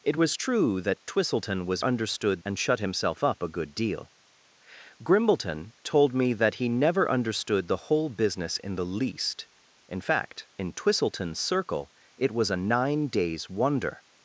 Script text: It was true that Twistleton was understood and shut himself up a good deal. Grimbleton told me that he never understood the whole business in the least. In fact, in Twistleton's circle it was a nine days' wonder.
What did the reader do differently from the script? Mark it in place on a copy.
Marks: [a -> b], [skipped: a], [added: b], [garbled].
It was true that Twistleton was understood and shut himself up a good deal. Grimbleton told me that he never understood the whole business in the least. In fact, in Twistleton's circle it was a nine days' wonder.